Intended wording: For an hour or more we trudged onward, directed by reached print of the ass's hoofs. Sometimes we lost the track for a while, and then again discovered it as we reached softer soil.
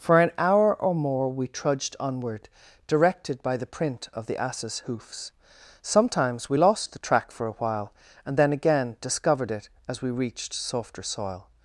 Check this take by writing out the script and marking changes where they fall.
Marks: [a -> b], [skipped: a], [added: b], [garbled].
For an hour or more we trudged onward, directed by [reached -> the] print of the ass's hoofs. Sometimes we lost the track for a while, and then again discovered it as we reached softer soil.